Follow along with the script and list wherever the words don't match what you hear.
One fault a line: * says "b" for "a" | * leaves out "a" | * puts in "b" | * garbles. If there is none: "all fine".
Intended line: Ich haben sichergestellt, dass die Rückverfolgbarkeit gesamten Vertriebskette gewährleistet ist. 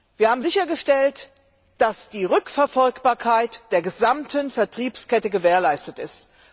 * says "Wir" for "Ich"
* puts in "der"